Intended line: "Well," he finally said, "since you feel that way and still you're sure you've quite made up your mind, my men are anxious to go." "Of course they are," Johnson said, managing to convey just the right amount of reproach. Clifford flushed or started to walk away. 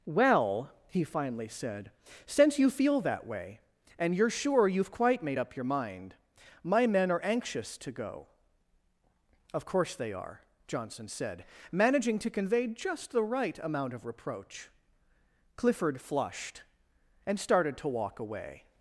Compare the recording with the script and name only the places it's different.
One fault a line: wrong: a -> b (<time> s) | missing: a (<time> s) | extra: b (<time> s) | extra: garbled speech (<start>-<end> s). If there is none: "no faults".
missing: still (4.2 s)
wrong: or -> and (17.2 s)